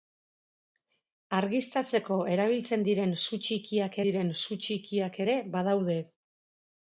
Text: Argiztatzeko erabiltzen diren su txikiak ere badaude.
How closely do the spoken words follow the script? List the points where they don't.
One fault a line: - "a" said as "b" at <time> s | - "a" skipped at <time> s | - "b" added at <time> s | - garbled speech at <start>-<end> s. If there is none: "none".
- "diren su txikiak" added at 4.1 s